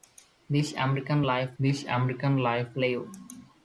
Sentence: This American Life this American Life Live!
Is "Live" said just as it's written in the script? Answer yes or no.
yes